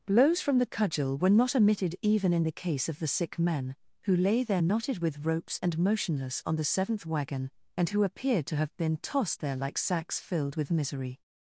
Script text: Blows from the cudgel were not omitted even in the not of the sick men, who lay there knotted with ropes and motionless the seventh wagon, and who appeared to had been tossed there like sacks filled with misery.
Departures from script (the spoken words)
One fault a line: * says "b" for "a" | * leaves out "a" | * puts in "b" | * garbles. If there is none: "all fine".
* says "case" for "not"
* puts in "on"
* says "have" for "had"